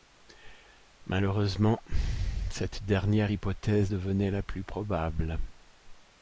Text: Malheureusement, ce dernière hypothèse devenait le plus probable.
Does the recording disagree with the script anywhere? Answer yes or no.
yes